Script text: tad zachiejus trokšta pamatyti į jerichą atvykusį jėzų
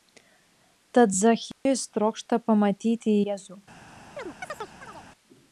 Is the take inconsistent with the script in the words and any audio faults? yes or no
yes